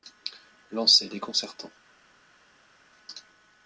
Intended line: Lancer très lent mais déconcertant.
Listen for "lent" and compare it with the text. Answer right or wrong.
wrong